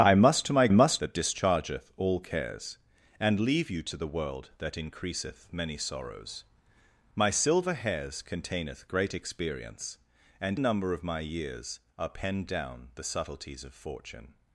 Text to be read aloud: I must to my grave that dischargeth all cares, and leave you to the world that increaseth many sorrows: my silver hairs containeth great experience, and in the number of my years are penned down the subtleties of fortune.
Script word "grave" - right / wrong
wrong